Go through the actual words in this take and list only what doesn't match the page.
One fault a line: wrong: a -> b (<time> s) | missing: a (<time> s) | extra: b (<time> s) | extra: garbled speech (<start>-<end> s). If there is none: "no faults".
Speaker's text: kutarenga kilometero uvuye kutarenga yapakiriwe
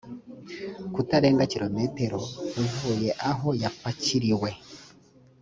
wrong: kutarenga -> aho (3.3 s)